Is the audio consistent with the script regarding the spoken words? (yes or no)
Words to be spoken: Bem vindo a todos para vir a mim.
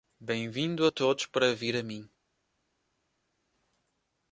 yes